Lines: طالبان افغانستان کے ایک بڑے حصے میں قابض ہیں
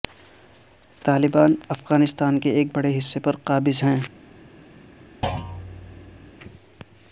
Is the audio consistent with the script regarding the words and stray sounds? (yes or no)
no